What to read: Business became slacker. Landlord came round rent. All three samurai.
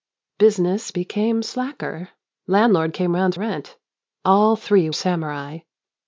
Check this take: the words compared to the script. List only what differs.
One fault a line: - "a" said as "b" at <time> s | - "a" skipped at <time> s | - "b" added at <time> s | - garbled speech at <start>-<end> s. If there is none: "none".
none